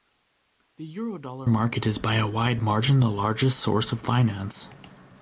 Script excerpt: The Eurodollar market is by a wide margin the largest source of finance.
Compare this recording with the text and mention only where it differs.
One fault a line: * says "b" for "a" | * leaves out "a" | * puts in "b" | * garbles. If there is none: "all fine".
all fine